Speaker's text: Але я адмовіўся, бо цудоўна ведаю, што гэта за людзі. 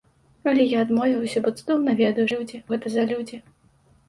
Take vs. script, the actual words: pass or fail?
fail